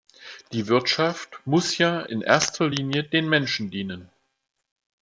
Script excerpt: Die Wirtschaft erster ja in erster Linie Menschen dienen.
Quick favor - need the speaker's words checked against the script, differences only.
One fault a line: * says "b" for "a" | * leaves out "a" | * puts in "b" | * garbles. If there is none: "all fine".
* says "muss" for "erster"
* puts in "den"